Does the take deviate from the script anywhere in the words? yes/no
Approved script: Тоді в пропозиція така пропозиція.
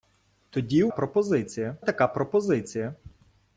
no